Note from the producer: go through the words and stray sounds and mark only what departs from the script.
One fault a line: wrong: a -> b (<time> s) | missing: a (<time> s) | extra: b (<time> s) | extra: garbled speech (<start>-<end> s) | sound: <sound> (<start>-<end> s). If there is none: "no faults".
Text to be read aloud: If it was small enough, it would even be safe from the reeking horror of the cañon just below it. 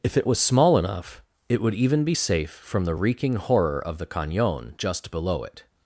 no faults